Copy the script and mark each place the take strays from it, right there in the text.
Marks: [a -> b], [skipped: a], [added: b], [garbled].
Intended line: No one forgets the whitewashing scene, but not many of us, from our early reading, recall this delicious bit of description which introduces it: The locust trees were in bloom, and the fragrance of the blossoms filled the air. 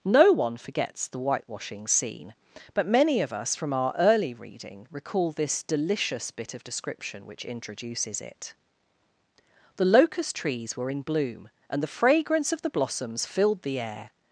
No one forgets the whitewashing scene, but [skipped: not] many of us, from our early reading, recall this delicious bit of description which introduces it: The locust trees were in bloom, and the fragrance of the blossoms filled the air.